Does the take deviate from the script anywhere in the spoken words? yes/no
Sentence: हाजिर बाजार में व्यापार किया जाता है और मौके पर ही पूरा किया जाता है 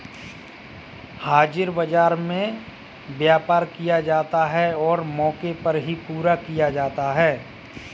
no